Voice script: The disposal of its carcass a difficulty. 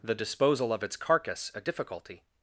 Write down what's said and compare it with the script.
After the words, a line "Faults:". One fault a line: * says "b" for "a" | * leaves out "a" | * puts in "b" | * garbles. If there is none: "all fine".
The disposal of its carcass a difficulty.
Faults:
all fine